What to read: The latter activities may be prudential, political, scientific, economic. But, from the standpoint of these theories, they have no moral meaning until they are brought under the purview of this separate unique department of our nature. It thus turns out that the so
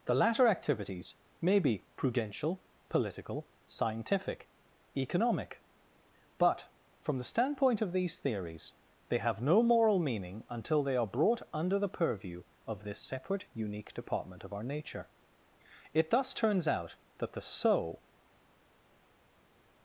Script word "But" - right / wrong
right